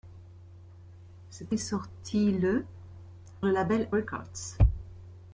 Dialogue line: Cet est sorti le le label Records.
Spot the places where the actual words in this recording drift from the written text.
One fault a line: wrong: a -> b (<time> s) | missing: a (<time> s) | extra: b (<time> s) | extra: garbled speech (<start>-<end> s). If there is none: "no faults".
no faults